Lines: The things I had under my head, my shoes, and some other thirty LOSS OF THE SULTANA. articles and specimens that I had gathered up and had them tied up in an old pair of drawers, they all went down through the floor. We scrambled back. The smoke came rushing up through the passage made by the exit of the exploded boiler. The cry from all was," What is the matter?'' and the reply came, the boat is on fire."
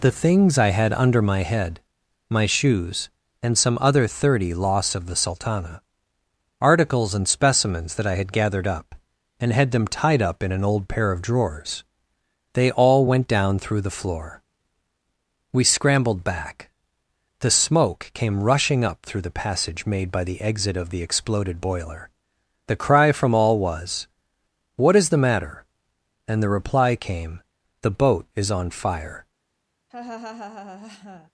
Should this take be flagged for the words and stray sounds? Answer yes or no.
yes